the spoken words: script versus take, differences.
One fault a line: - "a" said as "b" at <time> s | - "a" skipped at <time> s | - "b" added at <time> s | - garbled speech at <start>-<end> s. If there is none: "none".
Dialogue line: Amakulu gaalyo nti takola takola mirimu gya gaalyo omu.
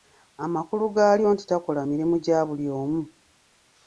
- "takola" skipped at 1.8 s
- "gaalyo" said as "buli" at 2.5 s